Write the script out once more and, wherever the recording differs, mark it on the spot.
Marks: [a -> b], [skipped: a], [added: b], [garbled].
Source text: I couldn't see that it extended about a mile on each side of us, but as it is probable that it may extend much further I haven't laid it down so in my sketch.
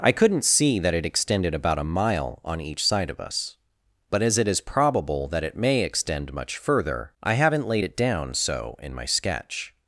I couldn't see that it extended about a mile on each side of us, but as it is probable that it may extend much further I haven't laid it down so in my sketch.